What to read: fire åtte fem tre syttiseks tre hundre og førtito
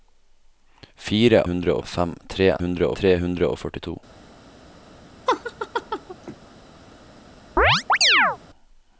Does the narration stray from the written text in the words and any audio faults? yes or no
yes